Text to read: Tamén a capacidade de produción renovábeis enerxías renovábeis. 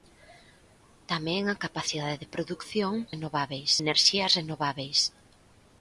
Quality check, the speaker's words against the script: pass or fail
pass